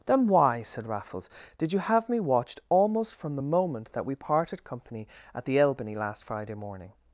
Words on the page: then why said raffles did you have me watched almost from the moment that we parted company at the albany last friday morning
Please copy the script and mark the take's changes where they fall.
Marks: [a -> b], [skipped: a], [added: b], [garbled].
then why said raffles did you have me watched almost from the moment that we parted company at the albany last friday morning